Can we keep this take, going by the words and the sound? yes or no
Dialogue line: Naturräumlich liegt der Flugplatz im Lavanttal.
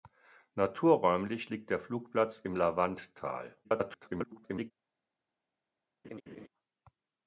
no